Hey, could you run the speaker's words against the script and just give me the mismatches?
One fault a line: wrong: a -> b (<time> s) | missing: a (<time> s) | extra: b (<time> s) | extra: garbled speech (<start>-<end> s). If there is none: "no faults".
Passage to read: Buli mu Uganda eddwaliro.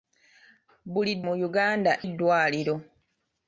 no faults